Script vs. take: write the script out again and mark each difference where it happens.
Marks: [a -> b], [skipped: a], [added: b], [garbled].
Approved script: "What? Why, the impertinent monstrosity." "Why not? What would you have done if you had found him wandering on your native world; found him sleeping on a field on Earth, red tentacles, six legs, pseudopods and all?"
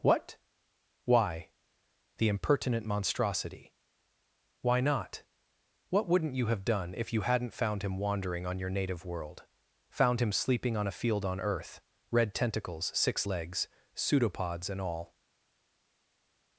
"What? Why, the impertinent monstrosity." "Why not? What [would -> wouldn't] you have done if you [had -> hadn't] found him wandering on your native world; found him sleeping on a field on Earth, red tentacles, six legs, pseudopods and all?"